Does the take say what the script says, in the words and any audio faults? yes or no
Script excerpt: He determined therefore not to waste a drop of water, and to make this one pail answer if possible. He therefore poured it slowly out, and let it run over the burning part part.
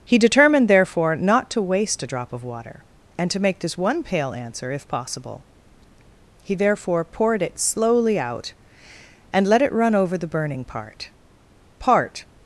yes